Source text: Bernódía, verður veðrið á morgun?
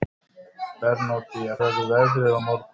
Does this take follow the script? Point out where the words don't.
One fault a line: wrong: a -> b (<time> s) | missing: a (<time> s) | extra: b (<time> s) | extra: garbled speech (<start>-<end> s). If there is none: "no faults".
no faults